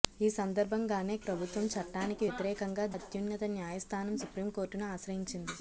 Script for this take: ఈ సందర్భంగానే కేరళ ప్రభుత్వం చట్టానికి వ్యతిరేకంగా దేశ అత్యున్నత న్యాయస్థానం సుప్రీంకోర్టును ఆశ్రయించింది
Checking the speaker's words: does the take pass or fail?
fail